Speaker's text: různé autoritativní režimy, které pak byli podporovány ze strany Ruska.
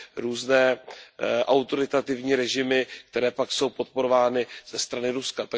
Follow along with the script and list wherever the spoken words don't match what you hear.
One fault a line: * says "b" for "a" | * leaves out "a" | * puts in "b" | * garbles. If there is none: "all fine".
* says "jsou" for "byli"